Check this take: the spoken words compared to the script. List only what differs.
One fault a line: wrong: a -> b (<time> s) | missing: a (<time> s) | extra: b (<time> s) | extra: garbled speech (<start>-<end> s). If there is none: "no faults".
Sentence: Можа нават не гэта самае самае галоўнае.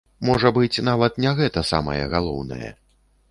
extra: быць (0.6 s)
missing: самае (2.0 s)